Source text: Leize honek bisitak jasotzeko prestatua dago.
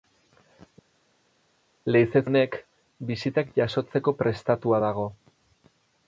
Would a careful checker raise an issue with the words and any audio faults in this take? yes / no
no